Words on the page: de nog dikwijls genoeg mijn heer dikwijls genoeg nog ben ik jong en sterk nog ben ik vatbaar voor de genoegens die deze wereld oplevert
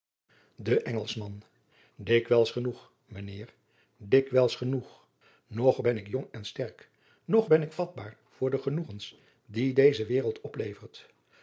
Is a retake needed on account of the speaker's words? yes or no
yes